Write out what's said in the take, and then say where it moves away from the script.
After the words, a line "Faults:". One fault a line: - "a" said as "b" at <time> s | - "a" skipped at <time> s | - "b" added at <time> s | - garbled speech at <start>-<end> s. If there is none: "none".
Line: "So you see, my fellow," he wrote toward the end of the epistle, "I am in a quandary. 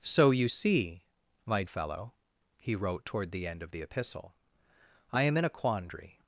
"So you see, my fellow," he wrote toward the end of the epistle, "I am in a quandary.
Faults:
none